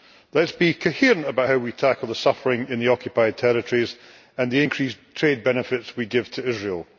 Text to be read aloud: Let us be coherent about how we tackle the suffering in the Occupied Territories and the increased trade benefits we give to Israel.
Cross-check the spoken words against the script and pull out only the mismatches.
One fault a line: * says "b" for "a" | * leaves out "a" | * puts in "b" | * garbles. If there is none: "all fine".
all fine